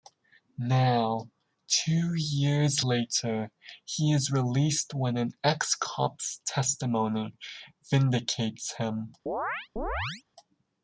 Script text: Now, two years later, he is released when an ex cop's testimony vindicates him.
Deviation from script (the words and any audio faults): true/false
true